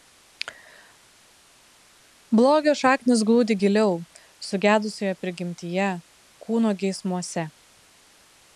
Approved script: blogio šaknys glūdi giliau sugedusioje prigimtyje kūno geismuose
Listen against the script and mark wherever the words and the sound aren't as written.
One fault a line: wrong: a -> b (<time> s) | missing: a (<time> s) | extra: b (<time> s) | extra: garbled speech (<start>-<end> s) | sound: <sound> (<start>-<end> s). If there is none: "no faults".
no faults